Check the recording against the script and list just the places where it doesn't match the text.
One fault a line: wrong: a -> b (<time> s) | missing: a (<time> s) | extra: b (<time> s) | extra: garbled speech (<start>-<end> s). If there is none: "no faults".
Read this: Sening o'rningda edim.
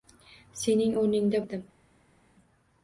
no faults